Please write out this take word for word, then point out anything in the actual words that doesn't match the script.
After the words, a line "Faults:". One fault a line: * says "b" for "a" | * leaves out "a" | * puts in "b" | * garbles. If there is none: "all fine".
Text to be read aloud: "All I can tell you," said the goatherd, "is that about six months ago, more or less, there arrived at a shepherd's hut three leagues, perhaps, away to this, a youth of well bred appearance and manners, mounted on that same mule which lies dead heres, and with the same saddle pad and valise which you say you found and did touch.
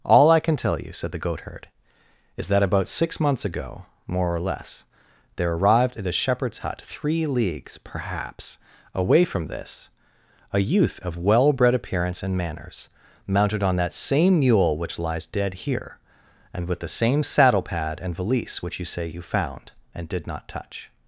"All I can tell you," said the goatherd, "is that about six months ago, more or less, there arrived at a shepherd's hut three leagues, perhaps, away from this, a youth of well bred appearance and manners, mounted on that same mule which lies dead here, and with the same saddle pad and valise which you say you found and did not touch.
Faults:
* says "from" for "to"
* says "here" for "heres"
* puts in "not"